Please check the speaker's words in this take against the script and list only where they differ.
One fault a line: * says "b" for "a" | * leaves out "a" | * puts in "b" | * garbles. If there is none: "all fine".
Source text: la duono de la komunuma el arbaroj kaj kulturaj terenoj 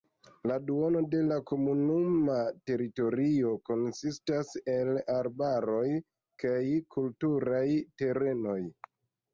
* puts in "teritorio konsistas"